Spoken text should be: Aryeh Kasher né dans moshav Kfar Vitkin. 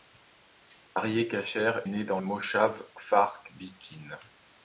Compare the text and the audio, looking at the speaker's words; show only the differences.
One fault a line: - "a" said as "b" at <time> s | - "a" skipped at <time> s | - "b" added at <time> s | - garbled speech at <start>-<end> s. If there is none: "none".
none